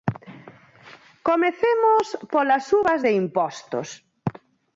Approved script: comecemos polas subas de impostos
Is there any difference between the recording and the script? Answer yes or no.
no